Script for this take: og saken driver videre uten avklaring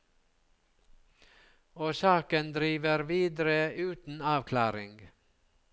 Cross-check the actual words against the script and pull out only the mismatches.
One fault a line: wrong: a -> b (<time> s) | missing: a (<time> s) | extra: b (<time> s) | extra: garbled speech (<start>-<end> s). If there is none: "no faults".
no faults